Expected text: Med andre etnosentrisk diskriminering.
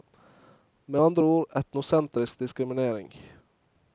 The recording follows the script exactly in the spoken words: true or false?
false